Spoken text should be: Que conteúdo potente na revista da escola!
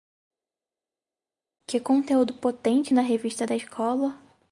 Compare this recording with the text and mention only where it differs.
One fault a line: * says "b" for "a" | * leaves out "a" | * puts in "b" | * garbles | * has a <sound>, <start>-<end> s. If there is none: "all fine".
all fine